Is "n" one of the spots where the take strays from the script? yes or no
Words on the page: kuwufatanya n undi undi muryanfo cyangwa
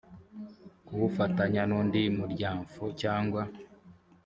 no